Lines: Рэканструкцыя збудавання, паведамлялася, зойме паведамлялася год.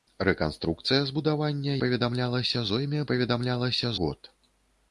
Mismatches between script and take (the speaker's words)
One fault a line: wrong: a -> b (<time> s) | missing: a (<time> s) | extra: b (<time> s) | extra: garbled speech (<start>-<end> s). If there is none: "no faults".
no faults